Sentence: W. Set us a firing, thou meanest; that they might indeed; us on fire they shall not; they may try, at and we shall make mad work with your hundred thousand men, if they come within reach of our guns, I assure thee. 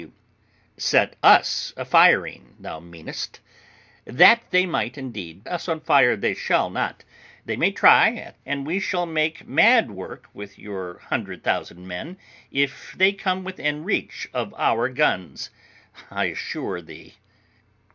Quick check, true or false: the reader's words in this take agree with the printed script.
true